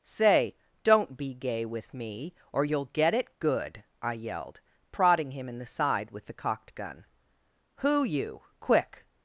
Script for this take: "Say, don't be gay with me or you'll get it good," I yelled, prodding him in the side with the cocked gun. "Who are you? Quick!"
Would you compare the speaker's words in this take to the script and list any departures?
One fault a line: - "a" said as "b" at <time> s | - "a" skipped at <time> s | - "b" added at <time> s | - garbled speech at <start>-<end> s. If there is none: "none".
- "are" skipped at 8.0 s